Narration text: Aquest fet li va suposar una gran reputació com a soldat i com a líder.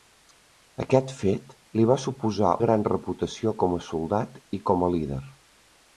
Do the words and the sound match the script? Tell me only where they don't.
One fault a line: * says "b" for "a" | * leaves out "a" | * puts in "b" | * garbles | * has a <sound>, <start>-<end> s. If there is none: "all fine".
* leaves out "una"